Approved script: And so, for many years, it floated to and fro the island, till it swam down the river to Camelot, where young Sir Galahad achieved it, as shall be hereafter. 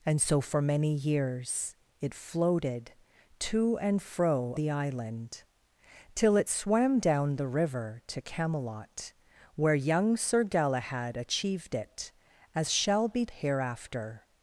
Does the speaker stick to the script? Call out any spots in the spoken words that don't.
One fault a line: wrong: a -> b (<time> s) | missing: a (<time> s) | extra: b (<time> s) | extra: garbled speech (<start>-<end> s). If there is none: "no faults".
no faults